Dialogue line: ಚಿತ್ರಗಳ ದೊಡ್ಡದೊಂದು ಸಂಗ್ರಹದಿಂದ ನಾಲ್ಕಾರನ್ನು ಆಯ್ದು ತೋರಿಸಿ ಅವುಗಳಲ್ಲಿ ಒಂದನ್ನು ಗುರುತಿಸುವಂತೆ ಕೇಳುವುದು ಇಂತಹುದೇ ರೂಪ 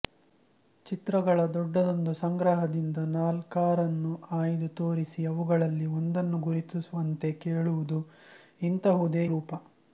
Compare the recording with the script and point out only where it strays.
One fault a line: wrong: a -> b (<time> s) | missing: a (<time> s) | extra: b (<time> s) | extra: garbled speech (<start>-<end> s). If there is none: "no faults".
no faults